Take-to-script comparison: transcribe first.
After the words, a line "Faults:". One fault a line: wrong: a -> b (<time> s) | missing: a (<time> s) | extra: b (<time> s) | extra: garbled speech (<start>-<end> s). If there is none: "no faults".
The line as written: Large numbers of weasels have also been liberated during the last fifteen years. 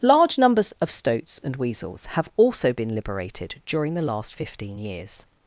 Large numbers of stoats and weasels have also been liberated during the last fifteen years.
Faults:
extra: stoats and (0.9 s)